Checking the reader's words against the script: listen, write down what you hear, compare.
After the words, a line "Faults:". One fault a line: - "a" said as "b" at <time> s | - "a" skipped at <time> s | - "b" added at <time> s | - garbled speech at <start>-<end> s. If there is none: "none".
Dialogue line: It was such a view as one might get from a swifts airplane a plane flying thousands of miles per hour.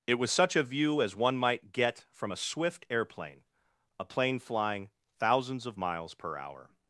It was such a view as one might get from a swift airplane a plane flying thousands of miles per hour.
Faults:
- "swifts" said as "swift" at 2.4 s